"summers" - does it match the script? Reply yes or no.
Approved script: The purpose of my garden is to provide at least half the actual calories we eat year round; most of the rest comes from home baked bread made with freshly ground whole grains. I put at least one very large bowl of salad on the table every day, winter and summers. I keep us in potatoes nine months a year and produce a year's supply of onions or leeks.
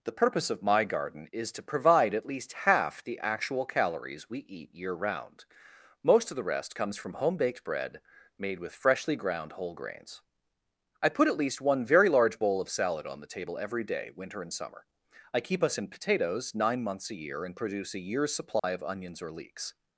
no